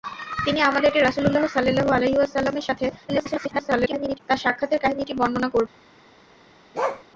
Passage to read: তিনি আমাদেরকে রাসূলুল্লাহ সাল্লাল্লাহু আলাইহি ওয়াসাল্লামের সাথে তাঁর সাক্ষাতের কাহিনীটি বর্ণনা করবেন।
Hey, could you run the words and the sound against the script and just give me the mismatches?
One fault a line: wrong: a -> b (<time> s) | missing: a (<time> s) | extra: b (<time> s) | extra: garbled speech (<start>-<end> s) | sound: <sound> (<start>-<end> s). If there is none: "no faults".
extra: garbled speech (3.1-4.2 s)
sound: bark (6.7-7.0 s)